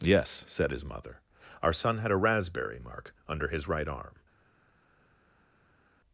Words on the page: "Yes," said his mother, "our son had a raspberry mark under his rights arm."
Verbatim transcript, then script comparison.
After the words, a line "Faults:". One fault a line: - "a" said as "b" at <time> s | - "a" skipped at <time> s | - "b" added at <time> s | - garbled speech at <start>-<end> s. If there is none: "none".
"Yes," said his mother, "our son had a raspberry mark under his right arm."
Faults:
- "rights" said as "right" at 3.7 s